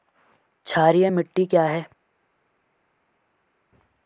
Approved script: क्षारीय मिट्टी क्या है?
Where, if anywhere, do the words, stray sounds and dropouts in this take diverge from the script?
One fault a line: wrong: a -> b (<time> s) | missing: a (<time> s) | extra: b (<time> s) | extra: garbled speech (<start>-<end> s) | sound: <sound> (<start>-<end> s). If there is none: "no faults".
no faults